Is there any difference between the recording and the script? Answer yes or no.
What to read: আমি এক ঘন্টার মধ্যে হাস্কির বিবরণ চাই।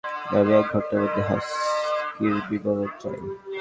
no